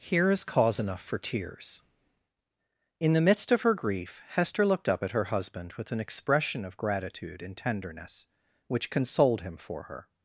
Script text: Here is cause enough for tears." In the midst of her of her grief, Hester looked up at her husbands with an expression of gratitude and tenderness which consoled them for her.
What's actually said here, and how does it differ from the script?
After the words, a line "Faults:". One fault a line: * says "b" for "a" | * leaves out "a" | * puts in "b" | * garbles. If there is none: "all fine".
Here is cause enough for tears." In the midst of her grief, Hester looked up at her husband with an expression of gratitude and tenderness which consoled him for her.
Faults:
* leaves out "of her"
* says "husband" for "husbands"
* says "him" for "them"